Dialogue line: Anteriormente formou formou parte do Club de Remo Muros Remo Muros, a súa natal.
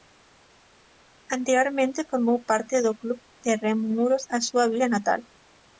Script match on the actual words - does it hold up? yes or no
no